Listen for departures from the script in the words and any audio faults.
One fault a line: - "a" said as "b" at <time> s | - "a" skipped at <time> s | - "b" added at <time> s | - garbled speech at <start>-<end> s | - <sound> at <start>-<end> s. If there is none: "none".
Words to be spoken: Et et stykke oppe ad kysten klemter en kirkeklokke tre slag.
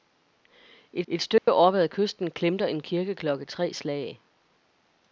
- dropout at 1.4-1.5 s